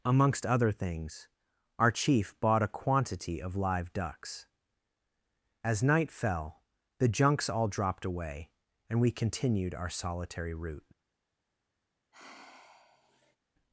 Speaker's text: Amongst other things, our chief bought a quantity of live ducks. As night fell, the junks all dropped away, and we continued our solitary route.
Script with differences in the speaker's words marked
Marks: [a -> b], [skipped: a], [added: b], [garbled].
Amongst other things, our chief bought a quantity of live ducks. As night fell, the junks all dropped away, and we continued our solitary route.